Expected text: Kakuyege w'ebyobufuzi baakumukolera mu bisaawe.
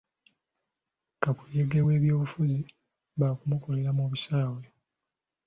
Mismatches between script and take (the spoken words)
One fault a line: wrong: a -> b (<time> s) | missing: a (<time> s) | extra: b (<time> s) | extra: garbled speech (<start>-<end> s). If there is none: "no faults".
no faults